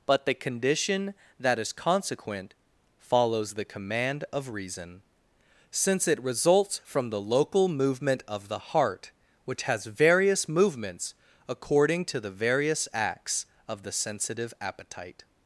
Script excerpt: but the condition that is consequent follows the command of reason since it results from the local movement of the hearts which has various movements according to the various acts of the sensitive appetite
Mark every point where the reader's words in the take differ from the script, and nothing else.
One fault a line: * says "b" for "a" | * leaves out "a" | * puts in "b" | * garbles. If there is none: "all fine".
* says "heart" for "hearts"